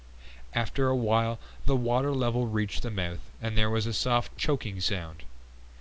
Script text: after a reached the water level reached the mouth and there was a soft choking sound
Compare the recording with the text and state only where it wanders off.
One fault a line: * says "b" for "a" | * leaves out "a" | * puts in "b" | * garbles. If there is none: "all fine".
* says "while" for "reached"